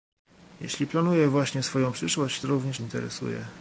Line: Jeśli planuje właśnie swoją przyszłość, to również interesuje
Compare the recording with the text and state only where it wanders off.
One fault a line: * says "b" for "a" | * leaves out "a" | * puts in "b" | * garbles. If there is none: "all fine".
all fine